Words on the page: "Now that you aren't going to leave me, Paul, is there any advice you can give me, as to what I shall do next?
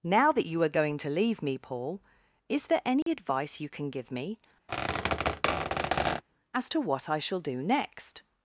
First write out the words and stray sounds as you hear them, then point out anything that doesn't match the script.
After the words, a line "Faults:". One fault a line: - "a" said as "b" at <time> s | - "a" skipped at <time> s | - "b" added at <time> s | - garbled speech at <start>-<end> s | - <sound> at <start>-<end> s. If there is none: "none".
"Now that you are going to leave me, Paul, is there any advice you can give me, as to what I shall do next?
Faults:
- "aren't" said as "are" at 0.6 s
- dropout at 3.0-3.1 s
- squeak at 4.7-6.2 s